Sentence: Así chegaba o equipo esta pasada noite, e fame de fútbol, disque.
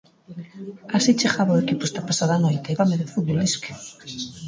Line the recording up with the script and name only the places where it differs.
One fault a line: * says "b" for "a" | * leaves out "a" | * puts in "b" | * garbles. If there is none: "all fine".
all fine